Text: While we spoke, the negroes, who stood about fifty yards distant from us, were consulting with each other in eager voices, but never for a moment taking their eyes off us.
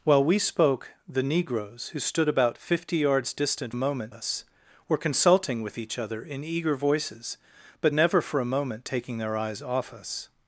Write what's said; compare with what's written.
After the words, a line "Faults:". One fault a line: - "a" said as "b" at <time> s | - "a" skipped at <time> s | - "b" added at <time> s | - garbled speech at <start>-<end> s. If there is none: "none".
While we spoke, the negroes, who stood about fifty yards distant moment us, were consulting with each other in eager voices, but never for a moment taking their eyes off us.
Faults:
- "from" said as "moment" at 3.7 s